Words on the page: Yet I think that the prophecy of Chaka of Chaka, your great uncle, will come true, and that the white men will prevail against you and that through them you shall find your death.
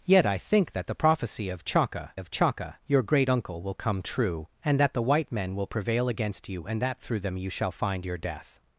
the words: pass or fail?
pass